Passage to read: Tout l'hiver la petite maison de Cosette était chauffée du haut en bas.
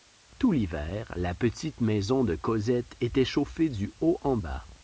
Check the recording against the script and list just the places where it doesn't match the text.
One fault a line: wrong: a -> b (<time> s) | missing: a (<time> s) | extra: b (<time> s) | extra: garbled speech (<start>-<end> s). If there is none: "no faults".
no faults